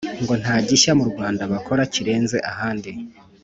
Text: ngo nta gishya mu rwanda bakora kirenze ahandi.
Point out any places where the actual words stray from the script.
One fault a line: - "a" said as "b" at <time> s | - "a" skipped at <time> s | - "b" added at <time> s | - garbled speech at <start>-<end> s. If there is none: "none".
none